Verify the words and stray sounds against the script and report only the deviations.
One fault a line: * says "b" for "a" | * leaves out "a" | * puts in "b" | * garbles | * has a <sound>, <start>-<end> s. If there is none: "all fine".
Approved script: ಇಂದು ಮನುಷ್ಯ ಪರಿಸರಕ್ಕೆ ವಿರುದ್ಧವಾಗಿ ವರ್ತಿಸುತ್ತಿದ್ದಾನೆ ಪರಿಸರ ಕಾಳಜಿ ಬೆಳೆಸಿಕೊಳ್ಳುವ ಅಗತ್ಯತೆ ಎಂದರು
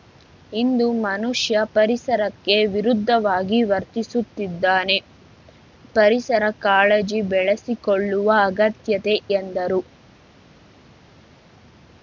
all fine